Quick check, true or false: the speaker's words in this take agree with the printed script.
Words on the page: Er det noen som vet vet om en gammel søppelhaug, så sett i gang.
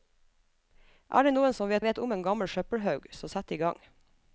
true